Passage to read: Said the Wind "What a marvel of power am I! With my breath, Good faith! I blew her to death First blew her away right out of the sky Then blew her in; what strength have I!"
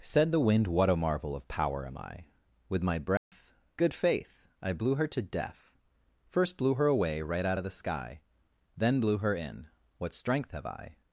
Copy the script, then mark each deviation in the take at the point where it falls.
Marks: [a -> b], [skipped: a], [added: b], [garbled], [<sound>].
Said the Wind "What a marvel of power am I! With my breath, [dropout] Good faith! I blew her to death First blew her away right out of the sky Then blew her in; what strength have I!"